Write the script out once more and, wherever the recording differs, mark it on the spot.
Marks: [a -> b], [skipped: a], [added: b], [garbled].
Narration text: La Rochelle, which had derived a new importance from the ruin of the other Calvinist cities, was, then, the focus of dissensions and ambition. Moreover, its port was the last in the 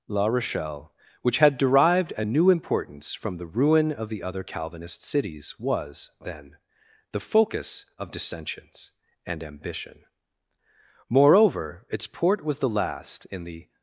La Rochelle, which had derived a new importance from the ruin of the other Calvinist cities, was, then, the focus of dissensions and ambition. Moreover, its port was the last in the